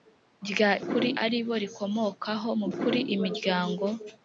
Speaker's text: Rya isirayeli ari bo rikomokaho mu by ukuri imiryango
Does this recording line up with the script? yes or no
no